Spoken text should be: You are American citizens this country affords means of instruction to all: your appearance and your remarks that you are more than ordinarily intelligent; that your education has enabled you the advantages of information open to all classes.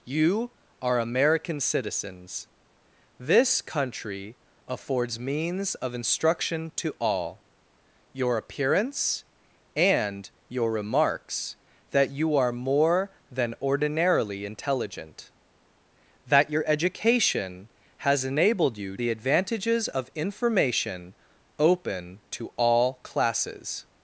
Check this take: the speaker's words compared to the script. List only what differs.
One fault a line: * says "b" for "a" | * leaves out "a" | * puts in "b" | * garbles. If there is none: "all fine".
all fine